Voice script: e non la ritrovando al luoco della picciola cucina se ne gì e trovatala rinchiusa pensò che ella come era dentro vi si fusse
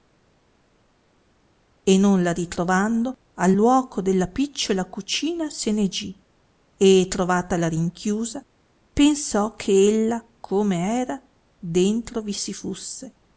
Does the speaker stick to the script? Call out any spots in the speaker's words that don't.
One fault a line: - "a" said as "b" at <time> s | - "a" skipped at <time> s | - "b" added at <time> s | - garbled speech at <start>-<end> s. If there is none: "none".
none